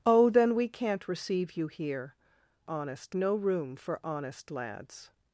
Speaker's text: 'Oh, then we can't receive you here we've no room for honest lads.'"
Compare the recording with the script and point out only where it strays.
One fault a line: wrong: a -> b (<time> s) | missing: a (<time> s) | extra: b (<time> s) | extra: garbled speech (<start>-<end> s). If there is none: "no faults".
wrong: we've -> honest (2.7 s)